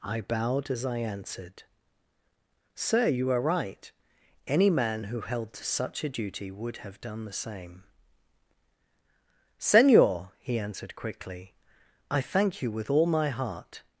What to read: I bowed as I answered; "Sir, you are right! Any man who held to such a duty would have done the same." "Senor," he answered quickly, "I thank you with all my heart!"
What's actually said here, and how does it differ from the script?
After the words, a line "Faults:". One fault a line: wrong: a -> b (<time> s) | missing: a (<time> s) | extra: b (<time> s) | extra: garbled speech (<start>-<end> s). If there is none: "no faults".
I bowed as I answered; "Sir, you are right! Any man who held to such a duty would have done the same." "Senor," he answered quickly, "I thank you with all my heart!"
Faults:
no faults